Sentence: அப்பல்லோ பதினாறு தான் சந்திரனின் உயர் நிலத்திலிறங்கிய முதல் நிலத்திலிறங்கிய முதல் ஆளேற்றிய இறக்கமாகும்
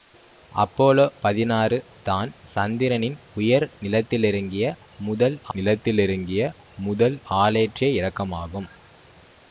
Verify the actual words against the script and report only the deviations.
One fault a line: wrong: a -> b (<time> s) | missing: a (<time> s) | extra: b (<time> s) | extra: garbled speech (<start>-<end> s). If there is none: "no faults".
no faults